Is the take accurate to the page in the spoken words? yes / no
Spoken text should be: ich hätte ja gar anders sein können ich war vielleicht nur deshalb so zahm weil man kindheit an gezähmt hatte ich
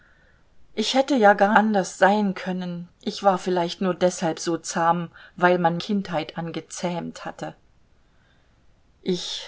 yes